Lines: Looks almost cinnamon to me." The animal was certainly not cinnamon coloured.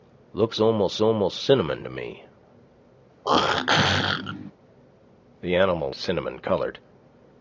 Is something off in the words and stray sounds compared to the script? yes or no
yes